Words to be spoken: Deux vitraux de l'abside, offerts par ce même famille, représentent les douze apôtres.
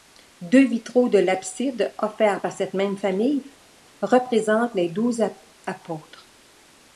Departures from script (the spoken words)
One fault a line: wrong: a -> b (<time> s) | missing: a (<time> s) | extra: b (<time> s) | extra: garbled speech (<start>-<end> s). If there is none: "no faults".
wrong: ce -> cette (2.5 s)